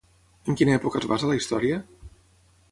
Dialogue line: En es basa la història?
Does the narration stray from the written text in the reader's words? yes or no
yes